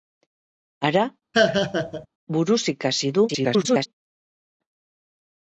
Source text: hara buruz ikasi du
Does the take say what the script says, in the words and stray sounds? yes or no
no